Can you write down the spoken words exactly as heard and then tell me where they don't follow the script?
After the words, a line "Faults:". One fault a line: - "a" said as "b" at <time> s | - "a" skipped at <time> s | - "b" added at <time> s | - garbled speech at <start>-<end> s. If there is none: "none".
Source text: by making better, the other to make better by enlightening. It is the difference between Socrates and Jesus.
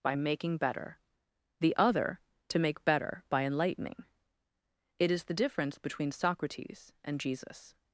by making better, the other to make better by enlightening. It is the difference between Socrates and Jesus.
Faults:
none